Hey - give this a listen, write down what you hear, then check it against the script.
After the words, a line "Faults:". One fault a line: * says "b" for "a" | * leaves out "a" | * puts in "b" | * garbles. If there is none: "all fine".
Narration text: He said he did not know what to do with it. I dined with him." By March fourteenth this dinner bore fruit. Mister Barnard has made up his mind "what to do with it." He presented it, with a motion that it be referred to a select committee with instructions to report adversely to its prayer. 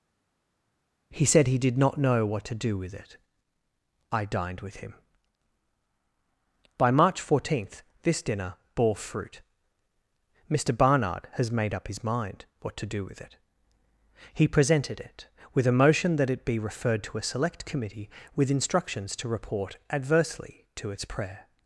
He said he did not know what to do with it. I dined with him." By March fourteenth this dinner bore fruit. Mister Barnard has made up his mind "what to do with it." He presented it, with a motion that it be referred to a select committee with instructions to report adversely to its prayer.
Faults:
all fine